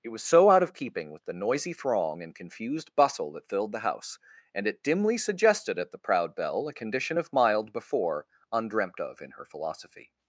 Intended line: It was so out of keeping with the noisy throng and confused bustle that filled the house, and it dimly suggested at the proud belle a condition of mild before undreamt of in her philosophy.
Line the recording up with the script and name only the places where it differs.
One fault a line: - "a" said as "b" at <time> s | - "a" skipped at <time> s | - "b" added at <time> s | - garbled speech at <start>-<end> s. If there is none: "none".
none